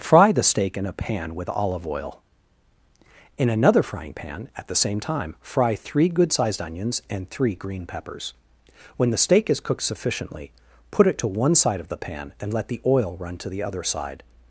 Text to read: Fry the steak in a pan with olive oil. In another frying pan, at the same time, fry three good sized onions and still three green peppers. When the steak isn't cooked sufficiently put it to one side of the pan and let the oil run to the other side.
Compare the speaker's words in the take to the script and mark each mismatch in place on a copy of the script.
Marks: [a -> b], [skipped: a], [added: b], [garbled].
Fry the steak in a pan with olive oil. In another frying pan, at the same time, fry three good sized onions and [skipped: still] three green peppers. When the steak [isn't -> is] cooked sufficiently put it to one side of the pan and let the oil run to the other side.